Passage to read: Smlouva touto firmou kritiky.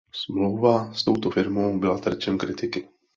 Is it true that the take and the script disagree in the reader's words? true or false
true